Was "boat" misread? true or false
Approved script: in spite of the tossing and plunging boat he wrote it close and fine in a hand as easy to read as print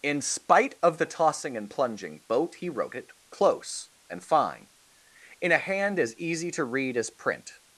false